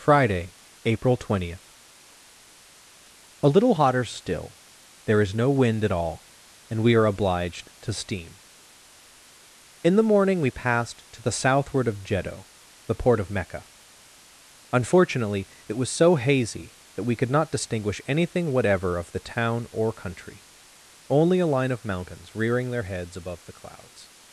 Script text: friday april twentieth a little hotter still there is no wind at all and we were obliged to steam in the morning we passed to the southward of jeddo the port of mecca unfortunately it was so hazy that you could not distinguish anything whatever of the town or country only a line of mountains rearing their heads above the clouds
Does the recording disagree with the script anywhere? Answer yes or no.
yes